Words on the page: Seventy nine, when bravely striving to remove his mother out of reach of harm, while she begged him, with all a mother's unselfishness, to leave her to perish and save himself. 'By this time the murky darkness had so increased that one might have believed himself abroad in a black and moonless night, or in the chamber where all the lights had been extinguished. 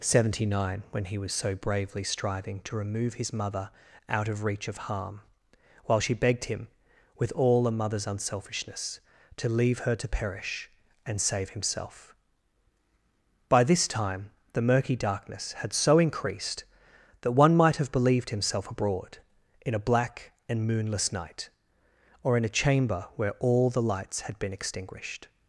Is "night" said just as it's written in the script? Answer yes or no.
yes